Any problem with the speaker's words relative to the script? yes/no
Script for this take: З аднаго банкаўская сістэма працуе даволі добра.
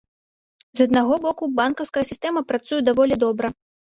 yes